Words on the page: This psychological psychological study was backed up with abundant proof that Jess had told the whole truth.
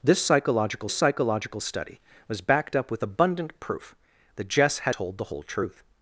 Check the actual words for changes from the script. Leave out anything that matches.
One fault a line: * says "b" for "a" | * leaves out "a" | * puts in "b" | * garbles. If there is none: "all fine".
all fine